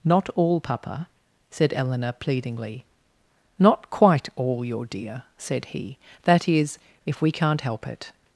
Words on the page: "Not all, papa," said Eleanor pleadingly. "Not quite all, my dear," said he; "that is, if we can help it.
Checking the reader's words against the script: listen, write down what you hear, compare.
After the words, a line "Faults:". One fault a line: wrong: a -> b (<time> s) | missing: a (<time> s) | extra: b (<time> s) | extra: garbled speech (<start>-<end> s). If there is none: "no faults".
"Not all, papa," said Eleanor pleadingly. "Not quite all, your dear," said he; "that is, if we can't help it.
Faults:
wrong: my -> your (4.7 s)
wrong: can -> can't (7.3 s)